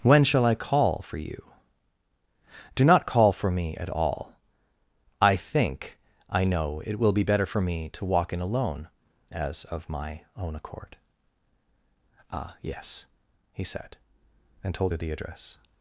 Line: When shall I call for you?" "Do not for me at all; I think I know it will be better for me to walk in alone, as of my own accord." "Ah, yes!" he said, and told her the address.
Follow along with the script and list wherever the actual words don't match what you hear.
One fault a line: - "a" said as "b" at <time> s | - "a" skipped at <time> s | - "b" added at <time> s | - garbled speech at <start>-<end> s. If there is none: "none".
- "call" added at 3.0 s